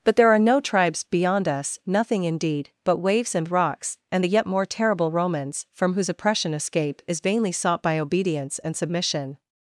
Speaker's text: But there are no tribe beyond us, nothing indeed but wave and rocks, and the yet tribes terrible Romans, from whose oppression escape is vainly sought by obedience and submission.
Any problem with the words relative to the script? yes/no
yes